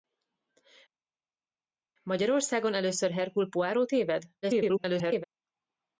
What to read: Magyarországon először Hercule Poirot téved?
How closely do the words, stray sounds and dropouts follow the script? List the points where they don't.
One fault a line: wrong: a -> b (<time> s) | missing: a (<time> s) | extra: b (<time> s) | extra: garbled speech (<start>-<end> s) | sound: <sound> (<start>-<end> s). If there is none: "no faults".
extra: garbled speech (4.4-5.2 s)